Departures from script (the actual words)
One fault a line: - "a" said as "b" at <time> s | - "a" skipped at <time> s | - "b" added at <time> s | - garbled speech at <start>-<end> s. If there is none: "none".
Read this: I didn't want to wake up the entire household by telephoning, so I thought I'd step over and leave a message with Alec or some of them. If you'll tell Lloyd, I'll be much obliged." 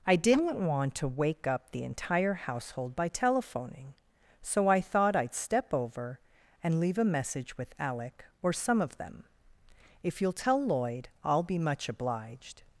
none